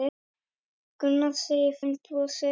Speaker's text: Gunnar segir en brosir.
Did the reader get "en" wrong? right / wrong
right